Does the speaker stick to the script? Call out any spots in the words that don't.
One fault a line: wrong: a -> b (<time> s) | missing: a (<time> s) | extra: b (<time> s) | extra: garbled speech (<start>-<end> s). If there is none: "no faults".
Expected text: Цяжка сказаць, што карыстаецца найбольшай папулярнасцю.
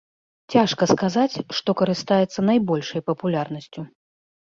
no faults